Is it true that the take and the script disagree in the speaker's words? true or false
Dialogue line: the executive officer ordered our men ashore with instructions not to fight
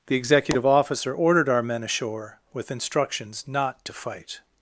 false